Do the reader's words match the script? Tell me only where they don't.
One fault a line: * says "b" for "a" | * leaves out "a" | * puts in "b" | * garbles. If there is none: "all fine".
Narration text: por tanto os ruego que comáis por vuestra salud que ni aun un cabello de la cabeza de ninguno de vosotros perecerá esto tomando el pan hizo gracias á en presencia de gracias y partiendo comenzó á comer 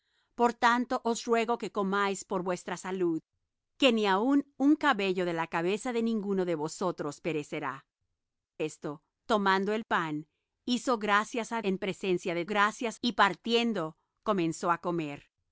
all fine